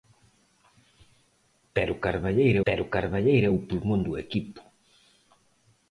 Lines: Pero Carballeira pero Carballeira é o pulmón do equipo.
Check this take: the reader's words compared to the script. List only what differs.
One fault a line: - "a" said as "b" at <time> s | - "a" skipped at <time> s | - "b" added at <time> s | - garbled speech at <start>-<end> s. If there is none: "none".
none